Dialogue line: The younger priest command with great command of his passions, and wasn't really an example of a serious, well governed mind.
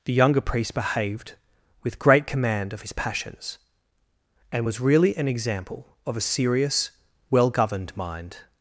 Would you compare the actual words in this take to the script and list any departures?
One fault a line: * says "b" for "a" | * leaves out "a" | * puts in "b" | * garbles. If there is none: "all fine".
* says "behaved" for "command"
* says "was" for "wasn't"